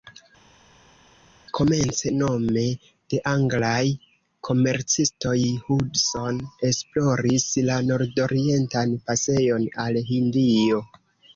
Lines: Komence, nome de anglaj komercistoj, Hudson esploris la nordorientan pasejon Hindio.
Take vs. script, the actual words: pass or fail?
fail